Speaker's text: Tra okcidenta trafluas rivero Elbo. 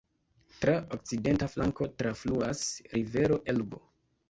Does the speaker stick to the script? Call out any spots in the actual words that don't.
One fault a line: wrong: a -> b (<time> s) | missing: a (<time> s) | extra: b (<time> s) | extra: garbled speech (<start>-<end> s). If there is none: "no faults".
extra: flanko (1.6 s)